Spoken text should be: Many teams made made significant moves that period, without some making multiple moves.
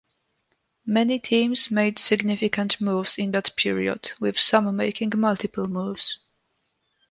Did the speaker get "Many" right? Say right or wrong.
right